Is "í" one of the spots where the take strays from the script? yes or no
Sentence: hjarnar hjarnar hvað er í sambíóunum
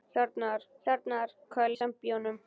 no